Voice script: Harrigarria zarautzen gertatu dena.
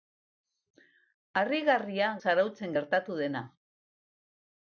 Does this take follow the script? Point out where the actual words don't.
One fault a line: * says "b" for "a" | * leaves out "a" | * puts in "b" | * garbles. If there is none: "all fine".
all fine